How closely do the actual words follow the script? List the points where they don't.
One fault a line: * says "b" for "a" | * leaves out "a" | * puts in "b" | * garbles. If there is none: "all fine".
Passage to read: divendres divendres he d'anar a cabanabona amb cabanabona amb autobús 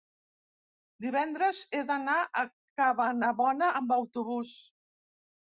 * leaves out "divendres"
* leaves out "cabanabona amb"